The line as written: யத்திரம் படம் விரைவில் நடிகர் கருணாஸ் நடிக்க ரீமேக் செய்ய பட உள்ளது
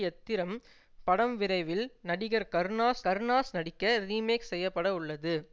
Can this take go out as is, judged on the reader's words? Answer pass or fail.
fail